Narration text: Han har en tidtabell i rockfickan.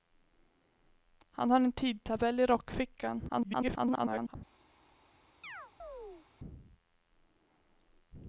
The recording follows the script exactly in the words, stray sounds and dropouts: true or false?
false